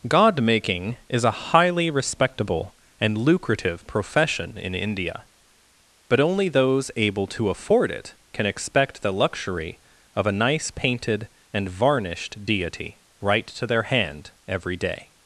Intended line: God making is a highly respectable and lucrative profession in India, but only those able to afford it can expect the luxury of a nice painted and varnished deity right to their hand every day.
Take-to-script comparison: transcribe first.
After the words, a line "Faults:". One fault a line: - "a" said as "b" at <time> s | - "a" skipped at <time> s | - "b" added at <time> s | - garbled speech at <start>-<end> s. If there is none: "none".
God making is a highly respectable and lucrative profession in India, but only those able to afford it can expect the luxury of a nice painted and varnished deity right to their hand every day.
Faults:
none